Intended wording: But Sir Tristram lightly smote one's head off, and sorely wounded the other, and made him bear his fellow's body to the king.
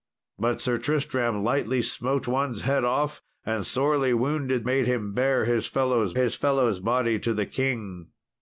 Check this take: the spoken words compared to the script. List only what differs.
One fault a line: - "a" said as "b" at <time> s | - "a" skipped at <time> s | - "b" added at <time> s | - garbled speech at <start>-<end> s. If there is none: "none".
- "the other and" skipped at 4.7 s
- "his fellow's" added at 6.1 s